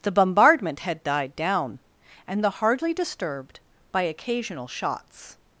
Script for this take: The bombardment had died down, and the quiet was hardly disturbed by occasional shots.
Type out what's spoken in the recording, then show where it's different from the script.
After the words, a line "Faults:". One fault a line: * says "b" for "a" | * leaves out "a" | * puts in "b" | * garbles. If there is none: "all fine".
The bombardment had died down, and the hardly disturbed by occasional shots.
Faults:
* leaves out "quiet was"